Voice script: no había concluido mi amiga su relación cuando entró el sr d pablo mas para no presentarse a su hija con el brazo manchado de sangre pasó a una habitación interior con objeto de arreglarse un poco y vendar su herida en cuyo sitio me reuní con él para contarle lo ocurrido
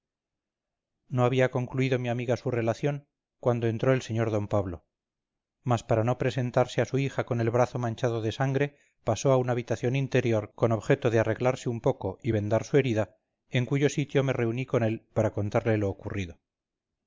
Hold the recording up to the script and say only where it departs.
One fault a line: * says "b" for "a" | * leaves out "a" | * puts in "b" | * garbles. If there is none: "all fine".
all fine